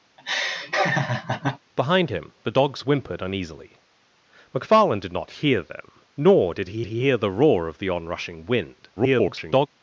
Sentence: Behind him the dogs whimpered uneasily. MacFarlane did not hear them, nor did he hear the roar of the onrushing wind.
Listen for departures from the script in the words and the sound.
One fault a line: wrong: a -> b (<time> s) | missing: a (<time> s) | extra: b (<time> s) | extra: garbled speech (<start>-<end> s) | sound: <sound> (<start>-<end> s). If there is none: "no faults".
sound: laugh (0.2-1.6 s)
extra: he (6.9 s)
extra: garbled speech (9.0-9.7 s)